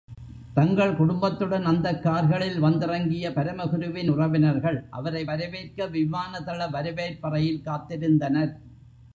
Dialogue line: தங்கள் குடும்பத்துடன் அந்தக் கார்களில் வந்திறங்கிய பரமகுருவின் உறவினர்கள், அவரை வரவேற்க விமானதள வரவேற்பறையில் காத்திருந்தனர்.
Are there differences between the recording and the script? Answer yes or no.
no